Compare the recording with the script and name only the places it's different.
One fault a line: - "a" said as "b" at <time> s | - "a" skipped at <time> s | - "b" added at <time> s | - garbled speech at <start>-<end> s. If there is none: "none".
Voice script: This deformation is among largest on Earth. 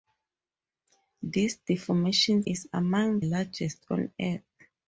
none